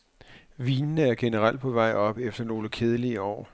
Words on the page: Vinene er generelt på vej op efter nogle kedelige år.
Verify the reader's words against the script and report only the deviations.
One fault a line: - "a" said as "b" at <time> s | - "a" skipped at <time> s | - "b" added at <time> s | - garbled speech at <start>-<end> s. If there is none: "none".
none